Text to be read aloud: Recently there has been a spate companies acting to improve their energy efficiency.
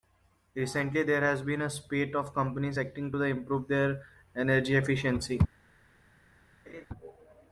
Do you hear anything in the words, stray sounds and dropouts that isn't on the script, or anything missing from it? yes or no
yes